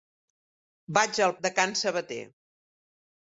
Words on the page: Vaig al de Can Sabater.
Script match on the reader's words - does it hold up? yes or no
yes